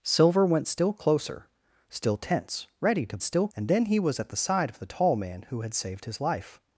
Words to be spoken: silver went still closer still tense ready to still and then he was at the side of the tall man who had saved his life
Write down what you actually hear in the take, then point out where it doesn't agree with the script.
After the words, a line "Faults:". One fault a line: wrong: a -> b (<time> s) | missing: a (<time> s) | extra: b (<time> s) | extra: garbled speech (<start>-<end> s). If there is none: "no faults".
silver went still closer still tense ready to still and then he was at the side of the tall man who had saved his life
Faults:
no faults